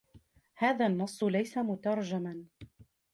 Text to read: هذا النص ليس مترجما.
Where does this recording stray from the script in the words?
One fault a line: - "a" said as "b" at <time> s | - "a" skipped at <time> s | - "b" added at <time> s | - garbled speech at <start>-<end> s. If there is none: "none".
none